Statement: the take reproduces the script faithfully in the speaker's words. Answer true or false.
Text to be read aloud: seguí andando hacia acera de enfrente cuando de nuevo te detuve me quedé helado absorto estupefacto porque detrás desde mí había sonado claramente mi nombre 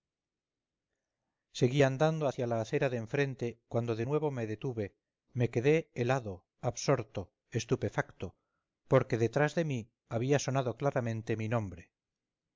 false